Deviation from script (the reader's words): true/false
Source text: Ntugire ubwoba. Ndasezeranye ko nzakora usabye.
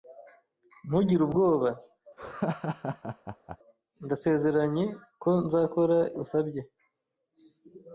false